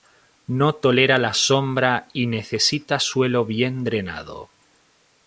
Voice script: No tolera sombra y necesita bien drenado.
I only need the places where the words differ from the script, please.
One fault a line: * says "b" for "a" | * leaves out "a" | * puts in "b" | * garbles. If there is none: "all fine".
* puts in "la"
* puts in "suelo"